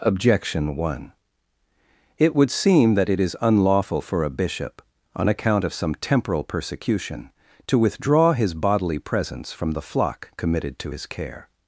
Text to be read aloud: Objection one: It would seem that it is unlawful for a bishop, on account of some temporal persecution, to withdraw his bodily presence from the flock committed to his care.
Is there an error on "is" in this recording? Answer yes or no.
no